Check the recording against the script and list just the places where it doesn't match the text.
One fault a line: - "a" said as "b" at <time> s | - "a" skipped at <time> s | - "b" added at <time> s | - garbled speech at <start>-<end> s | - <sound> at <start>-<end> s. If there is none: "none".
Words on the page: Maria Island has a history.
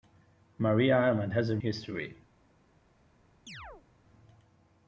- chirp at 3.5-3.9 s